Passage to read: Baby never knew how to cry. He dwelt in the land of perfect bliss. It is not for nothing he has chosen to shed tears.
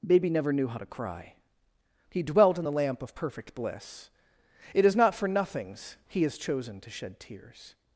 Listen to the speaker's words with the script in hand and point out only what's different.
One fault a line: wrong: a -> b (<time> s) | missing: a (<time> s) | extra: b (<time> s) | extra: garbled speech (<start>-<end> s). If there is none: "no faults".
wrong: land -> lamp (2.7 s)
wrong: nothing -> nothings (5.3 s)